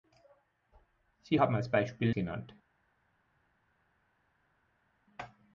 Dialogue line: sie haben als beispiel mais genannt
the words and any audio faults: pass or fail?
fail